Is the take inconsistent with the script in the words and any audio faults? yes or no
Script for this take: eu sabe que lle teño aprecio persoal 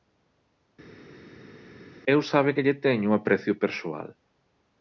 no